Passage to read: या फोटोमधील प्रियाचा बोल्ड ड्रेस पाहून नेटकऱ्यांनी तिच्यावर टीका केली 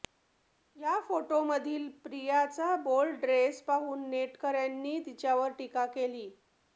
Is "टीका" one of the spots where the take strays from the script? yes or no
no